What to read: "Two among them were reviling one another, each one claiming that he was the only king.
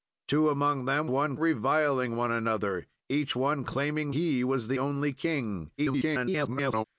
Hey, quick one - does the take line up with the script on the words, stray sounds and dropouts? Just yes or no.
no